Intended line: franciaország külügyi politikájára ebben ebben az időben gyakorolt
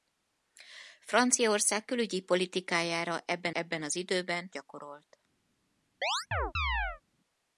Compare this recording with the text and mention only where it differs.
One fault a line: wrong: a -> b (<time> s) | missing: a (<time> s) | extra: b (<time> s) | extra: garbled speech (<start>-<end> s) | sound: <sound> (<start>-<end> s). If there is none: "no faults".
sound: chirp (6.0-7.0 s)